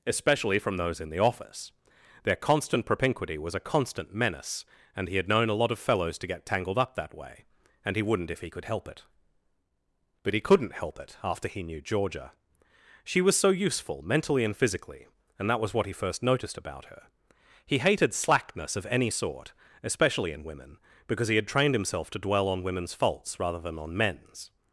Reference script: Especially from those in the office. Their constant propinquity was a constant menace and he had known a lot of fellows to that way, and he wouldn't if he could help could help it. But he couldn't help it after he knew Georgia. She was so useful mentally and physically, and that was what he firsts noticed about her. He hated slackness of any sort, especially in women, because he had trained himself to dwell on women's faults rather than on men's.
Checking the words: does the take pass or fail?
fail